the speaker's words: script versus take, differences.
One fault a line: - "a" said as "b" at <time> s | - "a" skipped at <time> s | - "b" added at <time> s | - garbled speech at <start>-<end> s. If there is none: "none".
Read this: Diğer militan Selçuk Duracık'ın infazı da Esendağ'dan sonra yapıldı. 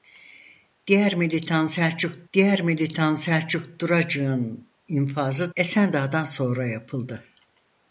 - "diğer militan Selçuk" added at 2.3 s
- "da" skipped at 5.5 s